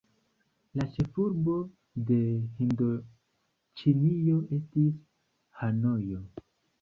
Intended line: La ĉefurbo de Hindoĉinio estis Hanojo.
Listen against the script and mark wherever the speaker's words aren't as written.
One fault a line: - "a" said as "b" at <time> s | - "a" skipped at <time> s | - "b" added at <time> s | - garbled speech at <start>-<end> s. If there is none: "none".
none